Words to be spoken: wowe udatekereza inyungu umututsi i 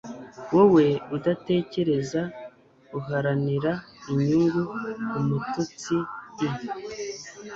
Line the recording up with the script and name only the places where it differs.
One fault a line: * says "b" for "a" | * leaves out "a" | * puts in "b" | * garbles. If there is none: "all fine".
* puts in "uharanira"